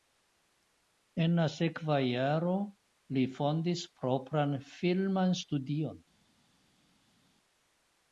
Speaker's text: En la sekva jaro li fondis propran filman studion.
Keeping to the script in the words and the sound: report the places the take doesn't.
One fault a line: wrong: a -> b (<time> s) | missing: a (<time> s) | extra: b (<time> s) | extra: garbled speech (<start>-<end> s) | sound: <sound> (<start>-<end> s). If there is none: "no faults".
no faults